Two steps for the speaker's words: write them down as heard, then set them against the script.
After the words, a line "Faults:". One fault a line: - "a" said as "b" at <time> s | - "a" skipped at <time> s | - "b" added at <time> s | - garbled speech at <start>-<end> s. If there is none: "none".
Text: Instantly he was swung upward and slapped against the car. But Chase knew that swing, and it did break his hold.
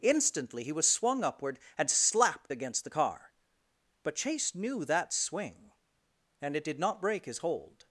Instantly he was swung upward and slapped against the car. But Chase knew that swing, and it did not break his hold.
Faults:
- "not" added at 6.8 s